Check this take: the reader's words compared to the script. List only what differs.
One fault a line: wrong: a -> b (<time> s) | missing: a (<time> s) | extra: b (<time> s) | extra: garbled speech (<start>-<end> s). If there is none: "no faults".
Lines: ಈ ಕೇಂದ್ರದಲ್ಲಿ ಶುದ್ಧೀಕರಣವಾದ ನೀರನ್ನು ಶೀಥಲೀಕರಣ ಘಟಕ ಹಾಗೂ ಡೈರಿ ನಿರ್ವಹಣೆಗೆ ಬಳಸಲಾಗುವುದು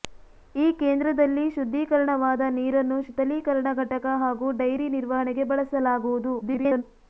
extra: garbled speech (6.4-6.8 s)